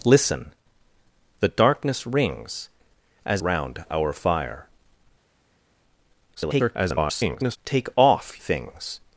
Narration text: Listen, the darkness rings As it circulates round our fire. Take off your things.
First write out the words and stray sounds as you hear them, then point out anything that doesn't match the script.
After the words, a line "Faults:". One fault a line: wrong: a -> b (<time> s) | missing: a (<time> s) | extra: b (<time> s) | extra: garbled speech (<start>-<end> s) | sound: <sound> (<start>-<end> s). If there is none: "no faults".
Listen, the darkness rings As round our fire. [garbled] Take off things.
Faults:
missing: it circulates (3.4 s)
extra: garbled speech (6.4-7.6 s)
missing: your (8.4 s)